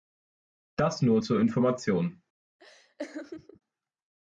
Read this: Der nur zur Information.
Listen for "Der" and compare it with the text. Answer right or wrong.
wrong